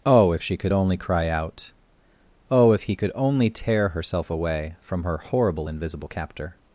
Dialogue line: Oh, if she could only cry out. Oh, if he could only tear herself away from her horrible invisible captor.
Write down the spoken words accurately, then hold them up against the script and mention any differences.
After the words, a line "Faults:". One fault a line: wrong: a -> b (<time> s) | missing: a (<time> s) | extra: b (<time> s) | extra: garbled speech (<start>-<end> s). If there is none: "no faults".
Oh, if she could only cry out. Oh, if he could only tear herself away from her horrible invisible captor.
Faults:
no faults